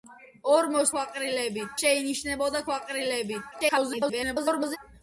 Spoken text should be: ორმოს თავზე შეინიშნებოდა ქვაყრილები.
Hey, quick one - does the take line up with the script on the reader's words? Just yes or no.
no